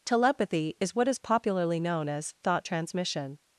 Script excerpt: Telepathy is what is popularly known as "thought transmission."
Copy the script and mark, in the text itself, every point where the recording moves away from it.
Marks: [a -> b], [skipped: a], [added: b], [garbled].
Telepathy is what is popularly known as "thought transmission."